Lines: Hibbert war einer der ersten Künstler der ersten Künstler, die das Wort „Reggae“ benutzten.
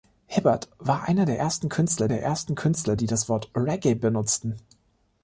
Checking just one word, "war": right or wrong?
right